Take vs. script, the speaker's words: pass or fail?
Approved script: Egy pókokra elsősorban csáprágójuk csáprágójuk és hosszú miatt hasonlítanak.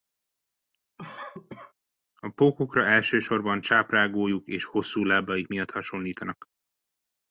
fail